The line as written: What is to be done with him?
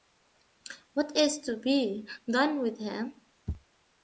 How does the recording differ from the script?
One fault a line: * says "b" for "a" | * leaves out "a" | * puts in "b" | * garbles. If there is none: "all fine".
all fine